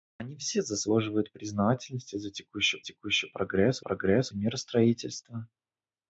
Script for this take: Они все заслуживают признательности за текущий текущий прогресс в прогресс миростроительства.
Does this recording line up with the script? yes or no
yes